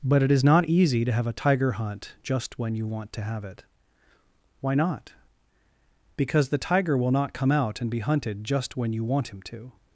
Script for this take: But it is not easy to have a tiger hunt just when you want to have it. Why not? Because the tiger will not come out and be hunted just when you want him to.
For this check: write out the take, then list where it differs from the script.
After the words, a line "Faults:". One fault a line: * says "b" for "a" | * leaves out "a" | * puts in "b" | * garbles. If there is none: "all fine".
But it is not easy to have a tiger hunt just when you want to have it. Why not? Because the tiger will not come out and be hunted just when you want him to.
Faults:
all fine